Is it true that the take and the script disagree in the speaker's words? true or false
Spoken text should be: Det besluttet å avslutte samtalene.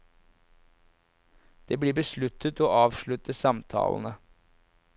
true